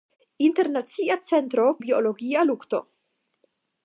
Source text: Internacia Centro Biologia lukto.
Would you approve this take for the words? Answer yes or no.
yes